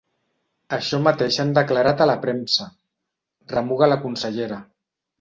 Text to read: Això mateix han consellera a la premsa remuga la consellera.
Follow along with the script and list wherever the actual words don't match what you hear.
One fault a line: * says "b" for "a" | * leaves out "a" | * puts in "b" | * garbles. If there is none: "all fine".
* says "declarat" for "consellera"